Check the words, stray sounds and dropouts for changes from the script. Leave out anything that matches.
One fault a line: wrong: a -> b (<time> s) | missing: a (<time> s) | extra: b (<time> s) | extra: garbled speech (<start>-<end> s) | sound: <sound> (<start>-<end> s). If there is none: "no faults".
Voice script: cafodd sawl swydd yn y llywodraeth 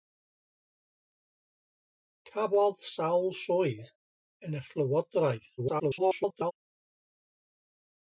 extra: garbled speech (5.6-6.5 s)